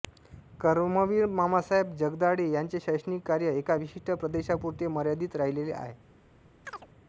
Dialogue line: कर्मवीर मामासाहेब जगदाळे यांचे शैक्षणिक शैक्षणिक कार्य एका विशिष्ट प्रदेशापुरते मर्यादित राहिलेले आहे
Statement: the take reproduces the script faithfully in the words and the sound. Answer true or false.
false